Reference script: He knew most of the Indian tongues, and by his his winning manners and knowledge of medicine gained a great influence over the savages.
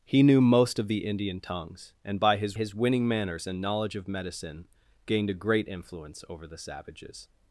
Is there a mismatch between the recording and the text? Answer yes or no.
no